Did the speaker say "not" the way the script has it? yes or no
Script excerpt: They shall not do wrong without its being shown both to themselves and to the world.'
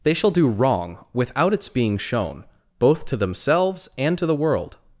no